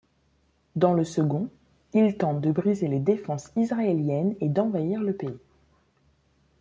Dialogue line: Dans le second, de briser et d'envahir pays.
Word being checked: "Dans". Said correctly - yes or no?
yes